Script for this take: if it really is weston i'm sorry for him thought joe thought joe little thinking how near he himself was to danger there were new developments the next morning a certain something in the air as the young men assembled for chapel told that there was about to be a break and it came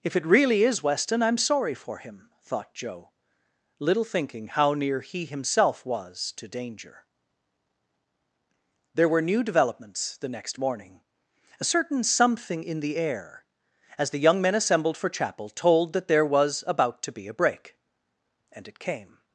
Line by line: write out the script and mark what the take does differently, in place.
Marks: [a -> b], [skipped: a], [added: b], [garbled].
if it really is weston i'm sorry for him thought joe [skipped: thought joe] little thinking how near he himself was to danger there were new developments the next morning a certain something in the air as the young men assembled for chapel told that there was about to be a break and it came